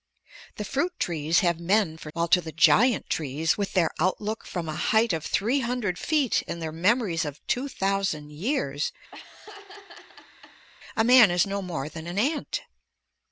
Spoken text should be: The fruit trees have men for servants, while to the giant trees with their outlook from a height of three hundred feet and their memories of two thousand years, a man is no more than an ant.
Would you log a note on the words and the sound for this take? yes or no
yes